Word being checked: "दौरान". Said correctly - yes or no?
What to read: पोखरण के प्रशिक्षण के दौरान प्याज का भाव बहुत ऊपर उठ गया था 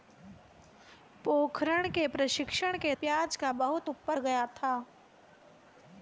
no